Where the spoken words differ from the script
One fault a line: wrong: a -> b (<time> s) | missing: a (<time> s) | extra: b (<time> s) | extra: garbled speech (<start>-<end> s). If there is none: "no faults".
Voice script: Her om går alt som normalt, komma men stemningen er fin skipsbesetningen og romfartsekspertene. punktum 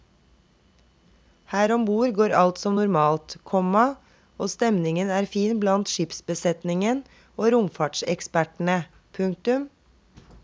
extra: bord (1.9 s)
wrong: men -> og (4.4 s)
extra: blant (5.6 s)